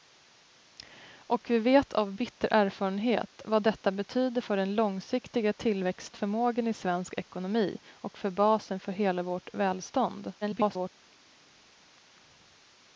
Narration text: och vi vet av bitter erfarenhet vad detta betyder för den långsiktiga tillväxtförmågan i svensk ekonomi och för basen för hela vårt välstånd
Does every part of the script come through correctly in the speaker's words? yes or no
no